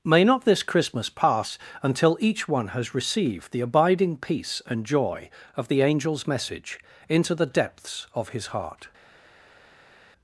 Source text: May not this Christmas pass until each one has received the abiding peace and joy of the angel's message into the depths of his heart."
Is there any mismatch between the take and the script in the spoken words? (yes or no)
no